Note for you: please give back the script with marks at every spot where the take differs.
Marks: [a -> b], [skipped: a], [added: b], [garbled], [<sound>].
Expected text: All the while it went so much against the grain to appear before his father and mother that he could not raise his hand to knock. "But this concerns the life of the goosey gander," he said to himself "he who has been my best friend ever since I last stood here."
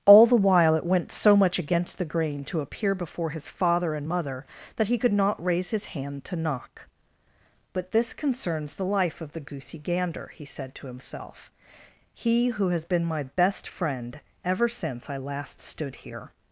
All the while it went so much against the grain to appear before his father and mother that he could not raise his hand to knock. "But this concerns the life of the goosey gander," he said to himself "he who has been my best friend ever since I last stood here."